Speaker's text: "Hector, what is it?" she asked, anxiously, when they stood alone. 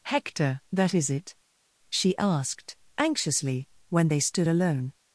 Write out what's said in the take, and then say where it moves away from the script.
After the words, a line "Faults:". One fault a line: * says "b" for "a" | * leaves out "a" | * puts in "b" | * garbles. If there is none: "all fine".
"Hector, that is it?" she asked, anxiously, when they stood alone.
Faults:
* says "that" for "what"